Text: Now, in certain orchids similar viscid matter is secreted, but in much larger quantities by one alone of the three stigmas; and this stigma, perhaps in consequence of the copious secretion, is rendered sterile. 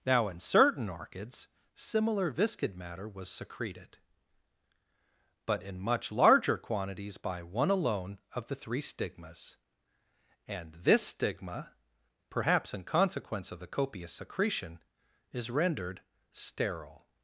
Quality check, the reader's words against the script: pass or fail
fail